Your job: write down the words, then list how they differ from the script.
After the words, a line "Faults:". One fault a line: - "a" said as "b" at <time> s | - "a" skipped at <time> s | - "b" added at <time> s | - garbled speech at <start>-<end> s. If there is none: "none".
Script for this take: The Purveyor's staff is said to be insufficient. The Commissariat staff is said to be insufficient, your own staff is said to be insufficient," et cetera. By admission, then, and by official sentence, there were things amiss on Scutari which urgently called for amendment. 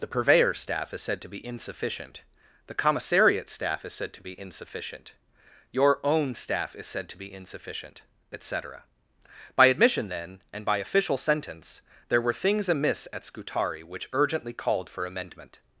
The Purveyor's staff is said to be insufficient. The Commissariat staff is said to be insufficient, your own staff is said to be insufficient," et cetera. By admission, then, and by official sentence, there were things amiss at Scutari which urgently called for amendment.
Faults:
- "on" said as "at" at 13.1 s